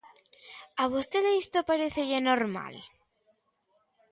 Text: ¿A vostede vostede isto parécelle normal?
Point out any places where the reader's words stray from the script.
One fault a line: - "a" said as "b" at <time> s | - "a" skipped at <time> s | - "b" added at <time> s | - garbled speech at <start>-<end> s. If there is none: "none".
- "vostede" skipped at 1.3 s